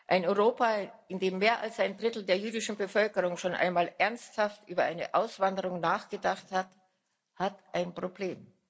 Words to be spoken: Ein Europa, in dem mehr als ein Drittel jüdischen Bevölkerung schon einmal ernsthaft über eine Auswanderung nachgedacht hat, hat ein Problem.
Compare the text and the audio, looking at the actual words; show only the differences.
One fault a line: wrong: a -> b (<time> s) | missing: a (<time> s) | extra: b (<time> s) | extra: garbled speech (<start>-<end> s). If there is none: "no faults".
extra: der (2.2 s)